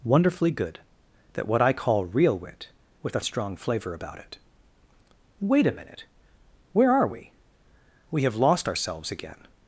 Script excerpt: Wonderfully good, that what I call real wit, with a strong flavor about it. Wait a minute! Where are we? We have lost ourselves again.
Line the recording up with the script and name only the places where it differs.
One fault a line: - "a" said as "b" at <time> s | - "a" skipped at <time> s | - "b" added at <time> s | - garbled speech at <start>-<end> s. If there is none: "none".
none